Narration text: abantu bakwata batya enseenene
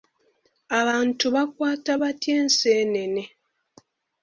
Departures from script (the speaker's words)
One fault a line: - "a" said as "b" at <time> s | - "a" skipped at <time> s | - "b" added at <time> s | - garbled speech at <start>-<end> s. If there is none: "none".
none